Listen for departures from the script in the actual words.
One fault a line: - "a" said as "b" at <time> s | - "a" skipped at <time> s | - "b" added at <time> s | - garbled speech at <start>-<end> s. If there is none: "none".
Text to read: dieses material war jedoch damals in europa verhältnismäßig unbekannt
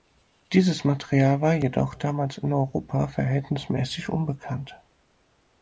none